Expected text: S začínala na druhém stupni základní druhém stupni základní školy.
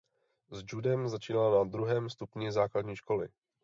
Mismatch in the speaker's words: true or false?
true